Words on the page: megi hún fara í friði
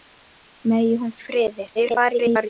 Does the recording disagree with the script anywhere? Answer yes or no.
yes